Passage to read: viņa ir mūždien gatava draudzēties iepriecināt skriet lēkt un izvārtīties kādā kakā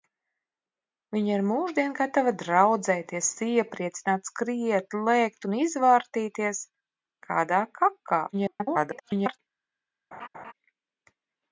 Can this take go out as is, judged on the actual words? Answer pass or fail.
fail